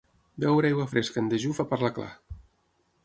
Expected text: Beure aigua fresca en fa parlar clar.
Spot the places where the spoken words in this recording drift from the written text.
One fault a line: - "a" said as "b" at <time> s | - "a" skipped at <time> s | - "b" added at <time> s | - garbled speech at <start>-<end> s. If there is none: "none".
- "dejú" added at 1.3 s